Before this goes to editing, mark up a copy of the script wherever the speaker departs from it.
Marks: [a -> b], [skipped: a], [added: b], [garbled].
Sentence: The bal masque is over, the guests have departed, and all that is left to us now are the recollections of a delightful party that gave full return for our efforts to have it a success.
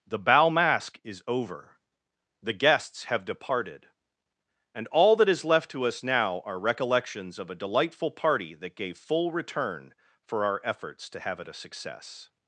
The bal masque is over, the guests have departed, and all that is left to us now are [skipped: the] recollections of a delightful party that gave full return for our efforts to have it a success.